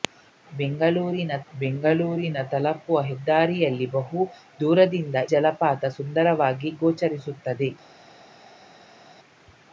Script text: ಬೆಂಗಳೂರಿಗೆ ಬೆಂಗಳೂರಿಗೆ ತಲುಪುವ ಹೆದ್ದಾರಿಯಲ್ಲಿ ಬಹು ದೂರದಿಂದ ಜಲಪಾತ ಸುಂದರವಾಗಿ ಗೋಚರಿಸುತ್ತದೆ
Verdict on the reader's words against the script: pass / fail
pass